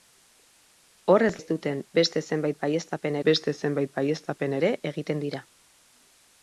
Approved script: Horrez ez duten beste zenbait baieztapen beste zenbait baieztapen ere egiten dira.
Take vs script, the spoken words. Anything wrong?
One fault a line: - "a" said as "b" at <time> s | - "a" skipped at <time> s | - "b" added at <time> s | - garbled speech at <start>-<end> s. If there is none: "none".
none